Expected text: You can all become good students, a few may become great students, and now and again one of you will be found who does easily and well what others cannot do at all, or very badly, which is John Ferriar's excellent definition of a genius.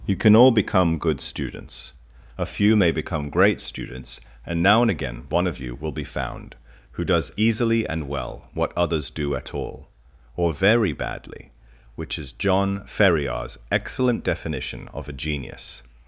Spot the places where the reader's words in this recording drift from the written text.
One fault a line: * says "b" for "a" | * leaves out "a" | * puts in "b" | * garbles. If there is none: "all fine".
* leaves out "cannot"